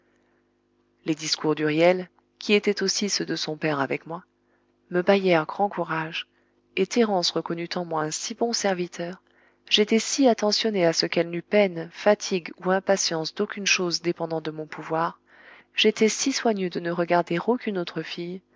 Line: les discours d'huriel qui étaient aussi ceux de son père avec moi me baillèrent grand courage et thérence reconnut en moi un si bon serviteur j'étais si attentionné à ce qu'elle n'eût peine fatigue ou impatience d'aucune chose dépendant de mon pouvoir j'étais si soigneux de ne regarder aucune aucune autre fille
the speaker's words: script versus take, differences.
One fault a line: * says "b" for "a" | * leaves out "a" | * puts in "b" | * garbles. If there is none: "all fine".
* leaves out "aucune"